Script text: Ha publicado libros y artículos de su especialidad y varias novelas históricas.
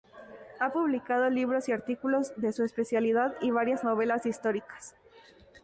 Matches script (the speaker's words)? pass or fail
pass